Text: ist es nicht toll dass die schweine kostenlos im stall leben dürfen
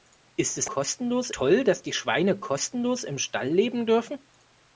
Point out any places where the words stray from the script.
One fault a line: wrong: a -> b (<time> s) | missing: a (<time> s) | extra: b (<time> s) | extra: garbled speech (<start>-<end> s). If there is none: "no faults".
wrong: nicht -> kostenlos (0.6 s)